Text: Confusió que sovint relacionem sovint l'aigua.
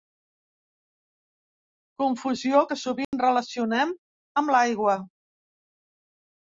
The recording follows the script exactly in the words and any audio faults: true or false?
false